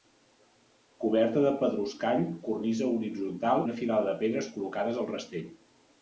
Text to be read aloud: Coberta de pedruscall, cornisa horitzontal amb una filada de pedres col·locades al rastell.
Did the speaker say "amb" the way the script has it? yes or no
no